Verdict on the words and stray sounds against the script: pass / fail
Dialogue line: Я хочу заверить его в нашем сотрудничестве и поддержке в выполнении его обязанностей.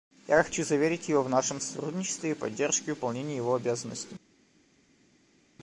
pass